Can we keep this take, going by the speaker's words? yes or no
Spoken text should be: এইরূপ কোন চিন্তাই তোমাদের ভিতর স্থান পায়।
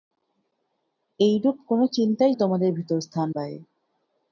yes